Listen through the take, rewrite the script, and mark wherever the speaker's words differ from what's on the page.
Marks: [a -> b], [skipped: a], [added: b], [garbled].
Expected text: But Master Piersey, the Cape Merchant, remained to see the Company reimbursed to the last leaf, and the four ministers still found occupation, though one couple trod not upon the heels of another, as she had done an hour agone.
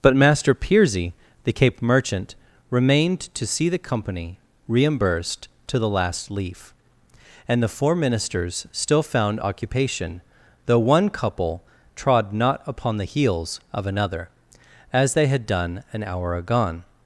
But Master Piersey, the Cape Merchant, remained to see the Company reimbursed to the last leaf, and the four ministers still found occupation, though one couple trod not upon the heels of another, as [she -> they] had done an hour agone.